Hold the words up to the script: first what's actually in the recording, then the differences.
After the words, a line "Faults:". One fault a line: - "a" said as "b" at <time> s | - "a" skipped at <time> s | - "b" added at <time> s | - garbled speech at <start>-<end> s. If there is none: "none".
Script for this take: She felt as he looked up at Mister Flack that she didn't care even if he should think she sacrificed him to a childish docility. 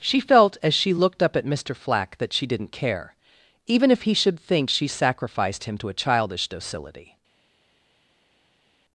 She felt as she looked up at Mister Flack that she didn't care even if he should think she sacrificed him to a childish docility.
Faults:
- "he" said as "she" at 0.7 s